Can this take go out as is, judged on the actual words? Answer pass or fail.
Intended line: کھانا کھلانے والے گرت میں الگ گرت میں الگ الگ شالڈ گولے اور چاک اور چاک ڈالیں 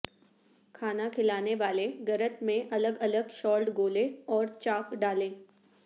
fail